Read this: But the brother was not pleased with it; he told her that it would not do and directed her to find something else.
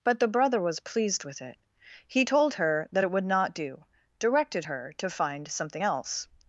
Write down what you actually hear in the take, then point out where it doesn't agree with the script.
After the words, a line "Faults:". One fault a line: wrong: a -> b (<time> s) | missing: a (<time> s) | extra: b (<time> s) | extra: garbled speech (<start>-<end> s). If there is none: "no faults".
But the brother was pleased with it; he told her that it would not do directed her to find something else.
Faults:
missing: not (0.8 s)
missing: and (3.8 s)